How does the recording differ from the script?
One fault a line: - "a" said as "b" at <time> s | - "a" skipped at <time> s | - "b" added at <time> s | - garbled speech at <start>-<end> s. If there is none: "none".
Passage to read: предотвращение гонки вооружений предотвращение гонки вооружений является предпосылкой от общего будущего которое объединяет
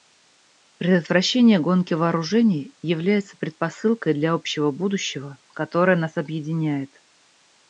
- "предотвращение гонки вооружений" skipped at 2.7 s
- "от" said as "для" at 4.2 s
- "нас" added at 6.0 s